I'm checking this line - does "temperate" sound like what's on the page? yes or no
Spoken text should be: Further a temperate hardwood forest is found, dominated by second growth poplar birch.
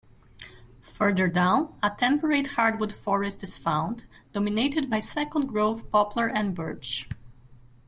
yes